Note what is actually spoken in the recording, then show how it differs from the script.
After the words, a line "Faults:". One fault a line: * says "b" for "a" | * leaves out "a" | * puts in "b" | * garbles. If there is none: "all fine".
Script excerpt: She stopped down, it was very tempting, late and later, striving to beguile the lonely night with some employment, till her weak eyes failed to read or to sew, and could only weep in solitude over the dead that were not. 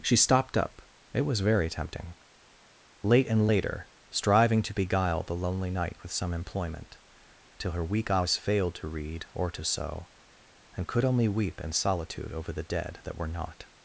She stopped up, it was very tempting, late and later, striving to beguile the lonely night with some employment, till her weak eyes failed to read or to sew, and could only weep in solitude over the dead that were not.
Faults:
* says "up" for "down"